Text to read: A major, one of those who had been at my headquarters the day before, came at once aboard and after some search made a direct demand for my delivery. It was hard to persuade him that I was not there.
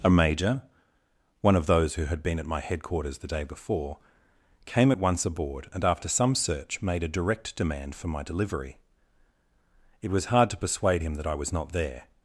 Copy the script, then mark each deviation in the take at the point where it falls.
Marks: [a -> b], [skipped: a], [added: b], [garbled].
A major, one of those who had been at my headquarters the day before, came at once aboard and after some search made a direct demand for my delivery. It was hard to persuade him that I was not there.